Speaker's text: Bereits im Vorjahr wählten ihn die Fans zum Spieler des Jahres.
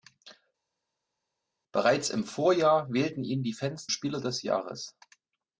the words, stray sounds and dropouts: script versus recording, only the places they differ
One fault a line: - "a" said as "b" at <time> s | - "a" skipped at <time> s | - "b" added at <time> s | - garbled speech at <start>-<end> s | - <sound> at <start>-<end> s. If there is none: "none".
- "zum" skipped at 3.9 s